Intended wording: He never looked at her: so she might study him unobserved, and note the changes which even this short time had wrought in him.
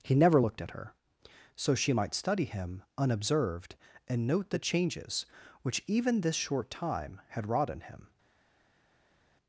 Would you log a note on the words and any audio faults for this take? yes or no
no